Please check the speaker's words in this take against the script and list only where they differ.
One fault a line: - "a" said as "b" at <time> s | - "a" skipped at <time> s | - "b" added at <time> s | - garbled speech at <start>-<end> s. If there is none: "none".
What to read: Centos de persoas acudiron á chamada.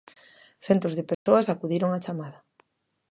none